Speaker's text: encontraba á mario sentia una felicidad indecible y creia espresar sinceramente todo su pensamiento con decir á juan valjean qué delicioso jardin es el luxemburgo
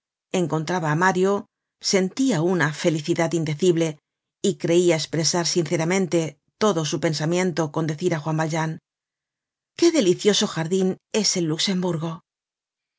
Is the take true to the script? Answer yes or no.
yes